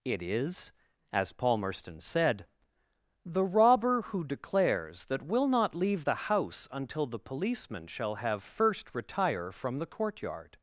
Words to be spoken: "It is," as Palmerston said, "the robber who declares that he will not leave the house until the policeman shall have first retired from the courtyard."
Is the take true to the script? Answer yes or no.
no